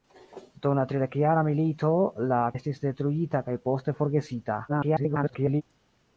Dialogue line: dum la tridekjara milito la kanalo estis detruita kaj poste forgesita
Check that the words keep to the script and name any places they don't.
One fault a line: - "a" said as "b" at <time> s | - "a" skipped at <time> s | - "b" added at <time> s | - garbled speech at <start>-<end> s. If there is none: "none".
- "kanalo" skipped at 2.4 s
- garbled speech at 4.7-5.6 s